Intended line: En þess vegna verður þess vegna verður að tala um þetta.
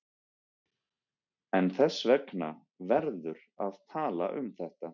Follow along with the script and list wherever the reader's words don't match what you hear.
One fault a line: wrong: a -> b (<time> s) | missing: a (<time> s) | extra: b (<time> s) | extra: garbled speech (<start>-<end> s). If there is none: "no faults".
missing: þess vegna verður (3.5 s)